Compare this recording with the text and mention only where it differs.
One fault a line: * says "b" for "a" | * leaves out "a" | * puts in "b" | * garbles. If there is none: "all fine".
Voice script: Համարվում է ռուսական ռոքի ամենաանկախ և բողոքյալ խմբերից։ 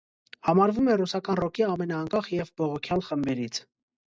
all fine